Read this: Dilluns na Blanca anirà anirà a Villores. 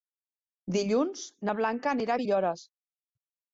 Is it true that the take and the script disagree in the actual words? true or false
true